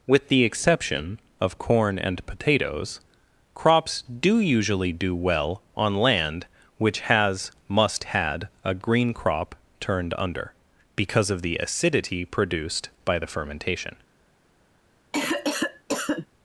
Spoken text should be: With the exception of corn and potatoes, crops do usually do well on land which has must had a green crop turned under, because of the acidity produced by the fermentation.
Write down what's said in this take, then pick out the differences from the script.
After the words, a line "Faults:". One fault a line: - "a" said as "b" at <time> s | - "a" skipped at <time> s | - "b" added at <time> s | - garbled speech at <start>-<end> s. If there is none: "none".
With the exception of corn and potatoes, crops do usually do well on land which has must had a green crop turned under, because of the acidity produced by the fermentation.
Faults:
none